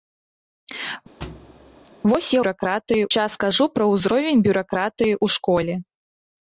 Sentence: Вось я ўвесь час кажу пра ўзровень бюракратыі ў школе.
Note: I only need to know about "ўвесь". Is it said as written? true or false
false